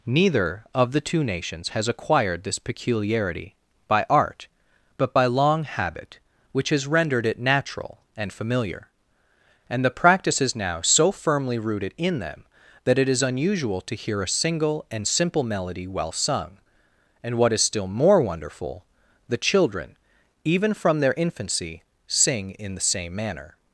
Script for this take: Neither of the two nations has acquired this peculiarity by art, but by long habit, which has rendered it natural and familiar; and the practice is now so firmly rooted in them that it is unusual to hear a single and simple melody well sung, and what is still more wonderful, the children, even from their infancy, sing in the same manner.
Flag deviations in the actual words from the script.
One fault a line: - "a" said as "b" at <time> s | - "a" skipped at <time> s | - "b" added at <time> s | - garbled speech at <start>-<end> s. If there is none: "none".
none